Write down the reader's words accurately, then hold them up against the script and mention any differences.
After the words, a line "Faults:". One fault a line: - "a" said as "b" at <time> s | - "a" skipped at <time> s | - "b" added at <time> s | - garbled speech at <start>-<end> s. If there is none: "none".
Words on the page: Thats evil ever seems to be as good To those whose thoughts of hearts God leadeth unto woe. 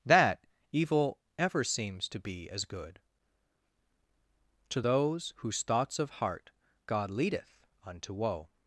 That evil ever seems to be as good To those whose thoughts of heart God leadeth unto woe.
Faults:
- "Thats" said as "That" at 0.1 s
- "hearts" said as "heart" at 6.2 s